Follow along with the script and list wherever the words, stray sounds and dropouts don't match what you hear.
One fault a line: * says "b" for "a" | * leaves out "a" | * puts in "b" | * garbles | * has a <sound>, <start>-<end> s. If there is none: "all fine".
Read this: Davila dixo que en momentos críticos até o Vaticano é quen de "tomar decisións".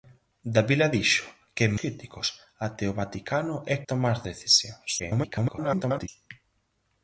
* leaves out "momentos"
* leaves out "quen de"
* garbles